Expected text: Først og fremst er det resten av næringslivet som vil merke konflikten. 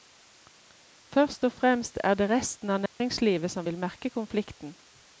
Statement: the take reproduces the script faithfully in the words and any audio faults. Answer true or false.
false